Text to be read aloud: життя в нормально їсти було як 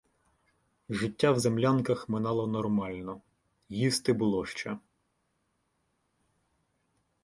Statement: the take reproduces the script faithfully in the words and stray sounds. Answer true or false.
false